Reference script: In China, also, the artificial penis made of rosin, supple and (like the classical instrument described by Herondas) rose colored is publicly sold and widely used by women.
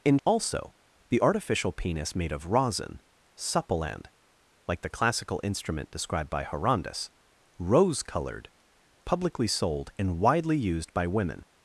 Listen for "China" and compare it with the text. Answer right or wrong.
wrong